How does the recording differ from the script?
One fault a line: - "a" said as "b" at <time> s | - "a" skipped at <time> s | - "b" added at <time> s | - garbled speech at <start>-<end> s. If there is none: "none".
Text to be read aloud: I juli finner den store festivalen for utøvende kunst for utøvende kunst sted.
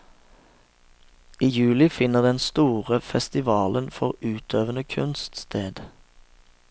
- "for utøvende kunst" skipped at 5.4 s